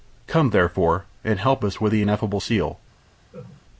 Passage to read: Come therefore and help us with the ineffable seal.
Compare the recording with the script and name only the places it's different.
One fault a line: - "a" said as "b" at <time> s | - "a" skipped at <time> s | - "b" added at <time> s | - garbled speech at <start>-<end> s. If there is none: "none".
none